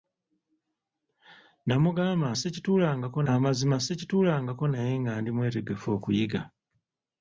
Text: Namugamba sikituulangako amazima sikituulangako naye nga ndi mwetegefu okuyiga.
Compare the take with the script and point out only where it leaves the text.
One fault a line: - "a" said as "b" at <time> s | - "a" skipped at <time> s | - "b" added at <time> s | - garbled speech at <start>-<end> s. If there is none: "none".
none